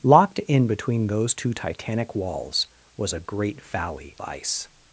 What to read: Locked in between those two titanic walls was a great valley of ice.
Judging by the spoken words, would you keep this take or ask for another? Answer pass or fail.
fail